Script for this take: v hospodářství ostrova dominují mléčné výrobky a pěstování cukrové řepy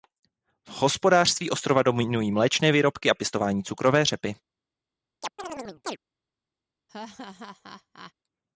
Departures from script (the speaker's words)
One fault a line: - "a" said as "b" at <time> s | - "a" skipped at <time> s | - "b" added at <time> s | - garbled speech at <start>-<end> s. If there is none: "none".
none